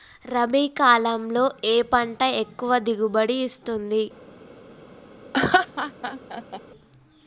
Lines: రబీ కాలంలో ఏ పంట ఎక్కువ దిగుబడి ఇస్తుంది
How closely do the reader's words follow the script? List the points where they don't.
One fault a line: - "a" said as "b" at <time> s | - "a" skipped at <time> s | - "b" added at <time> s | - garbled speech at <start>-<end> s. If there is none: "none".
none